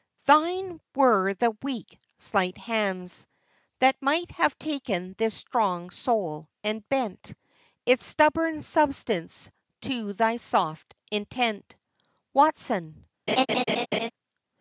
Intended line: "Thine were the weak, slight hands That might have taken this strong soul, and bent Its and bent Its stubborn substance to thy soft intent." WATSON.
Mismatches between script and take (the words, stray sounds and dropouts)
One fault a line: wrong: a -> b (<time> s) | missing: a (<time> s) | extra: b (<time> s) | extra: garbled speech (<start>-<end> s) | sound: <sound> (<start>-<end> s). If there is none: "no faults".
missing: and bent Its (8.0 s)
sound: laugh (13.3-14.1 s)